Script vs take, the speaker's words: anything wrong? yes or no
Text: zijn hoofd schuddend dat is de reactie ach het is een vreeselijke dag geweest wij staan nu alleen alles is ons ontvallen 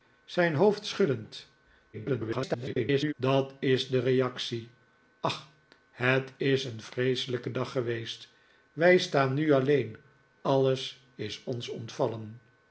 yes